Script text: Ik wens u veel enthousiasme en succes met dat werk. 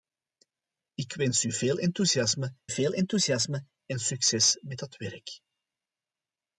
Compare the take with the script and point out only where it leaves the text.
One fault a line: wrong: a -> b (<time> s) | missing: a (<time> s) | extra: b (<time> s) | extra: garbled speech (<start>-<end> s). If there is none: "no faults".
extra: veel enthousiasme (2.7 s)